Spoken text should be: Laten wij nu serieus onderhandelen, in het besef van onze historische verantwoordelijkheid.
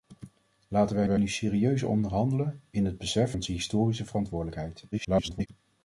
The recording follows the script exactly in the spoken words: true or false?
false